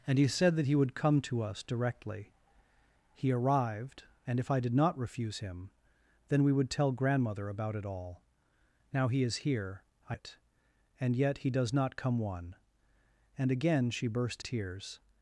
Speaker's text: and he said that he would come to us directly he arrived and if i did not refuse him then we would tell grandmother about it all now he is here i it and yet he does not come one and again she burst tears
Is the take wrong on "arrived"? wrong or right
right